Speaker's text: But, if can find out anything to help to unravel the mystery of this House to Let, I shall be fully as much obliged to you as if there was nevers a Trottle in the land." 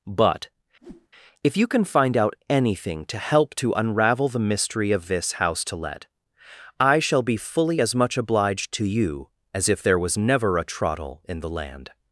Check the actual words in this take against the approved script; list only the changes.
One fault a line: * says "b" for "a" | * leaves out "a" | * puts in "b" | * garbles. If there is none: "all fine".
* puts in "you"
* says "never" for "nevers"